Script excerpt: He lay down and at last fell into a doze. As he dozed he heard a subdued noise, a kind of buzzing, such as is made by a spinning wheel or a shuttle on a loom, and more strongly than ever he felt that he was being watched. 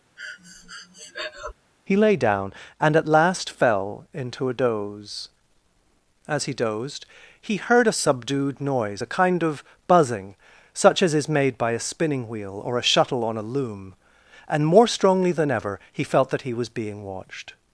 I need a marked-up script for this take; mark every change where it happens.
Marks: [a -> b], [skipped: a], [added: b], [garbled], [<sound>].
[breath] He lay down and at last fell into a doze. As he dozed he heard a subdued noise, a kind of buzzing, such as is made by a spinning wheel or a shuttle on a loom, and more strongly than ever he felt that he was being watched.